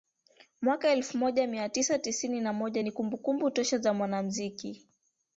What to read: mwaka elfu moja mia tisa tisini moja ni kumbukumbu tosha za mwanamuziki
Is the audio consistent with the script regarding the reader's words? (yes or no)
no